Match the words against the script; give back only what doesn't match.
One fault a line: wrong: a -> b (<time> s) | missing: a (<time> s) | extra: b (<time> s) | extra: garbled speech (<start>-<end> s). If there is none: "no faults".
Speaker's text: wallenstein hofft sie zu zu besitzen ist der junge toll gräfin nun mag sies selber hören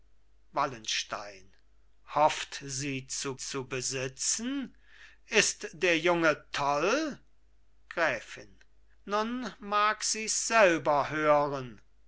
no faults